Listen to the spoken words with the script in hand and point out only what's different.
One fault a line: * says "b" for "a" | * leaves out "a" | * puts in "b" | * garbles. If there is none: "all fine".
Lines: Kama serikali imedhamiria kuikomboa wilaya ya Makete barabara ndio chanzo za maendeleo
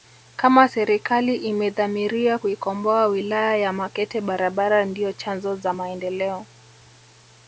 all fine